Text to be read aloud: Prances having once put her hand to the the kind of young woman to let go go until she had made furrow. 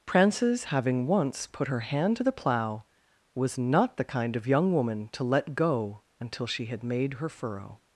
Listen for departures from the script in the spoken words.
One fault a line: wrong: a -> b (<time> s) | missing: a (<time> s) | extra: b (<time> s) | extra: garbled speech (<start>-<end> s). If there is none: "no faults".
extra: plough was not (2.3 s)
missing: go (6.0 s)
extra: her (7.2 s)